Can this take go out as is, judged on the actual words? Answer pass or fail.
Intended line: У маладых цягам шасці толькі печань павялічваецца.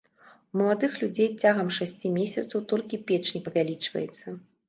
fail